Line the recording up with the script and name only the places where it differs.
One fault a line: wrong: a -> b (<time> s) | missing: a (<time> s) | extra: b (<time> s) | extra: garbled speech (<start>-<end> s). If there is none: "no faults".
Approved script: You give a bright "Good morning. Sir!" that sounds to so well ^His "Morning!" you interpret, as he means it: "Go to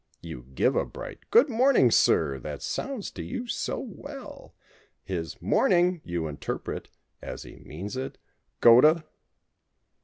extra: you (3.2 s)